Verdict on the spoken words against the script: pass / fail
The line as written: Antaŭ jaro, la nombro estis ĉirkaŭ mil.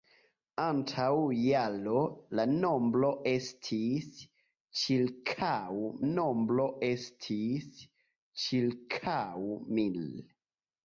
fail